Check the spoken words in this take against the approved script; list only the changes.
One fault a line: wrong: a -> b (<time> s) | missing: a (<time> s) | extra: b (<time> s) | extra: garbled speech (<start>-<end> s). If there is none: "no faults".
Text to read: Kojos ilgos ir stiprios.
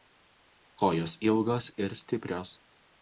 no faults